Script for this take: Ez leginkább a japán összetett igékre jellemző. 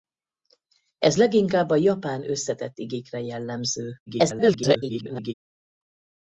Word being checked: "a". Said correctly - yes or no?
yes